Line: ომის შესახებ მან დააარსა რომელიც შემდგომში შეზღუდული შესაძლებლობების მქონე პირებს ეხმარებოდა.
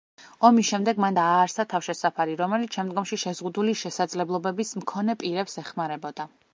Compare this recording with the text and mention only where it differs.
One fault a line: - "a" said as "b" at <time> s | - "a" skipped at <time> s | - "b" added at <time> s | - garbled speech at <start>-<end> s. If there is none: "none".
- "შესახებ" said as "შემდეგ" at 0.7 s
- "თავშესაფარი" added at 1.7 s